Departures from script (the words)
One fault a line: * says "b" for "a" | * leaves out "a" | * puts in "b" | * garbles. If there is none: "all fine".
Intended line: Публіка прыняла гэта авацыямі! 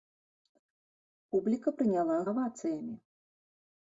* leaves out "гэта"